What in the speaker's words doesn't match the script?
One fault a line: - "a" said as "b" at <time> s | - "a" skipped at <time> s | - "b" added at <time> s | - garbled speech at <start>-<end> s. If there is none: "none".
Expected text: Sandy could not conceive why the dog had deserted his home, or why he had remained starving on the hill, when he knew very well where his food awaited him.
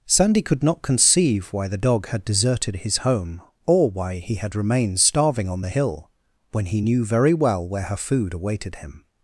- "his" said as "her" at 7.8 s